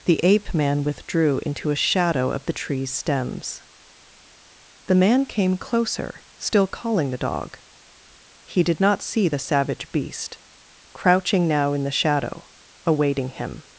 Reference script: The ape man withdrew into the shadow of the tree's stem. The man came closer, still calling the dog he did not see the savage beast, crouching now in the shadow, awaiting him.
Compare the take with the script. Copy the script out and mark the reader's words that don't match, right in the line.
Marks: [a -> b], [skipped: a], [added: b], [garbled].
The ape man withdrew into [the -> a] shadow of the tree's [stem. -> stems] The man came closer, still calling the dog he did not see the savage beast, crouching now in the shadow, awaiting him.